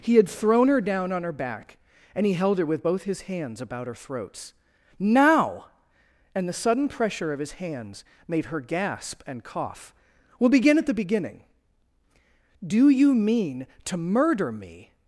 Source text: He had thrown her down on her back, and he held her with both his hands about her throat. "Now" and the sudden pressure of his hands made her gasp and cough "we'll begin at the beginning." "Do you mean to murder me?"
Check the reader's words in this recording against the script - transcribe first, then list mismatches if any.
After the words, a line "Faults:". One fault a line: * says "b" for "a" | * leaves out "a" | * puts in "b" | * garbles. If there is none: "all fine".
He had thrown her down on her back, and he held her with both his hands about her throats. "Now" and the sudden pressure of his hands made her gasp and cough "we'll begin at the beginning." "Do you mean to murder me?"
Faults:
* says "throats" for "throat"